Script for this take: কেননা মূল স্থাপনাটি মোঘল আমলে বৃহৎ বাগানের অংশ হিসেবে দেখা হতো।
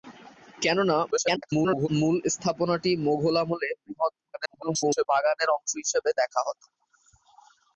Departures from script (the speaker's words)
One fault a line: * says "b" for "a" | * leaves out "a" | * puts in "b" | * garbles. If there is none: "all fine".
* garbles
* garbles